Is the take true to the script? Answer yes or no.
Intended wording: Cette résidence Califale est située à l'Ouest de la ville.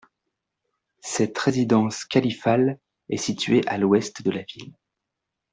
yes